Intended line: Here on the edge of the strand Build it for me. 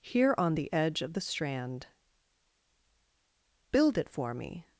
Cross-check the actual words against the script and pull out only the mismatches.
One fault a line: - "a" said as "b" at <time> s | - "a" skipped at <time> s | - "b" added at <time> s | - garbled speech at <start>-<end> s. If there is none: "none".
none